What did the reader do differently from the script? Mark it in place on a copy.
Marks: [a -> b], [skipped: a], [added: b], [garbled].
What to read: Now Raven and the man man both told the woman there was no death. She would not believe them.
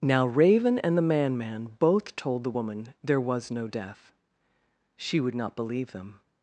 Now Raven and the man man both told the woman there was no death. She would not believe them.